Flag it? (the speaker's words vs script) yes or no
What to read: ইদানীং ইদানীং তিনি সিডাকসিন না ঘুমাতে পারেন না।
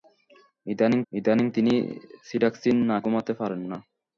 no